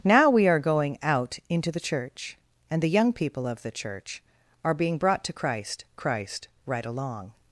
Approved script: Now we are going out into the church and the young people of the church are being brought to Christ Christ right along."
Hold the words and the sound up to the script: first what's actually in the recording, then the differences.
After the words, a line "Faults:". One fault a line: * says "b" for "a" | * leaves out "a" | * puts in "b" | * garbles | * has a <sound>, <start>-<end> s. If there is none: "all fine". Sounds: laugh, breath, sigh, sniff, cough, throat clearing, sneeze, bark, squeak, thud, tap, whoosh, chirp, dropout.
Now we are going out into the church and the young people of the church are being brought to Christ Christ right along."
Faults:
all fine